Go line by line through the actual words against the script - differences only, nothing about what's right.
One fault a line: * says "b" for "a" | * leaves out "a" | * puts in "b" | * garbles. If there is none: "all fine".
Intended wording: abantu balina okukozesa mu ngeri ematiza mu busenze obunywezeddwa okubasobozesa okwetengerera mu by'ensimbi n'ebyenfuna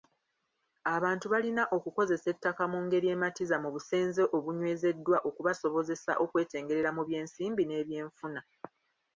* puts in "ettaka"